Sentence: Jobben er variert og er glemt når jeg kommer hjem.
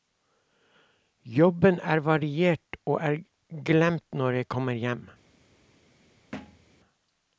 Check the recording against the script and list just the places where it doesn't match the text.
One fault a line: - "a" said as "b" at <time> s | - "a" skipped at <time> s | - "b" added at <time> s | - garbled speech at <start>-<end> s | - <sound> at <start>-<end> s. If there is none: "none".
- thud at 6.3-6.7 s